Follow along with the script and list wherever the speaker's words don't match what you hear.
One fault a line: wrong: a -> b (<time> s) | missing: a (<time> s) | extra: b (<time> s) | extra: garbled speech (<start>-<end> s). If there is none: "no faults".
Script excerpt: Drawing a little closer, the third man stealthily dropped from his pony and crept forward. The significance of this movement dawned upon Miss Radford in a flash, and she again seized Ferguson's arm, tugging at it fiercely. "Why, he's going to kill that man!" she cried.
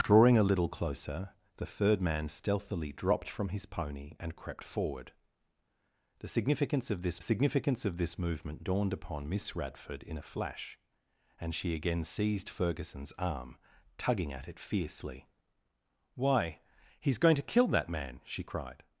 extra: significance of this (7.2 s)